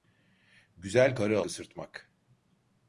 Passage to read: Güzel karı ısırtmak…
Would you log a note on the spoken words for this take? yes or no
no